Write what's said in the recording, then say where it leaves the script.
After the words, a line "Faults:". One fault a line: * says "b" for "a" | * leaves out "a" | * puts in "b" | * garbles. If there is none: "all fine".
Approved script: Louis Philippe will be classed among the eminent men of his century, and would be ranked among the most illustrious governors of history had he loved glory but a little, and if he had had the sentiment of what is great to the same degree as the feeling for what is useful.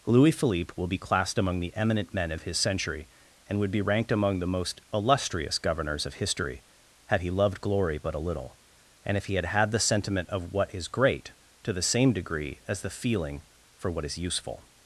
Louis Philippe will be classed among the eminent men of his century, and would be ranked among the most illustrious governors of history had he loved glory but a little, and if he had had the sentiment of what is great to the same degree as the feeling for what is useful.
Faults:
all fine